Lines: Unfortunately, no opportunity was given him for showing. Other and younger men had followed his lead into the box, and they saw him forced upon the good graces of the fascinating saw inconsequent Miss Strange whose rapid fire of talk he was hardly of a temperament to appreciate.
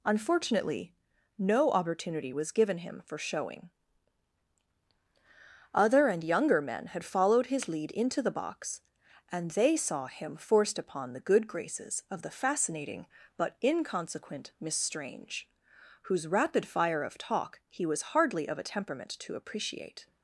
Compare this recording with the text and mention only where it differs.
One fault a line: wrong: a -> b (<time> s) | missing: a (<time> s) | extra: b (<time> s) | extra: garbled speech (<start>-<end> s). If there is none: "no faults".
wrong: saw -> but (13.4 s)